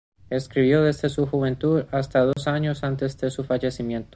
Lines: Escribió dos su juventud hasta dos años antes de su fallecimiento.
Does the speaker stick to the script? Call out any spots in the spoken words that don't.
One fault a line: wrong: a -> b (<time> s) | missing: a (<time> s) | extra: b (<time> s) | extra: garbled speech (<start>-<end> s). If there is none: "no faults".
wrong: dos -> desde (0.8 s)